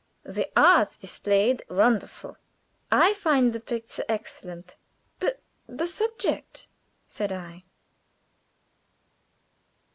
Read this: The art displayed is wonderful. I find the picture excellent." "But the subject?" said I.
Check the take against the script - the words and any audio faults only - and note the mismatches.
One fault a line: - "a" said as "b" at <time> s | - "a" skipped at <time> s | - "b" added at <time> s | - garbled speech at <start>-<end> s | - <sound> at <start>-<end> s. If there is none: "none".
- "is" skipped at 1.6 s